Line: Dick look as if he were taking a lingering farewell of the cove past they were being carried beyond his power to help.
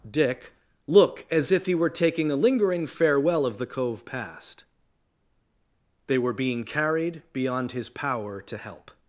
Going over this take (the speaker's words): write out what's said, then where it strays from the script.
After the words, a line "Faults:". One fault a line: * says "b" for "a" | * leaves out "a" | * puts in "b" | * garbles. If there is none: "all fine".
Dick look as if he were taking a lingering farewell of the cove past they were being carried beyond his power to help.
Faults:
all fine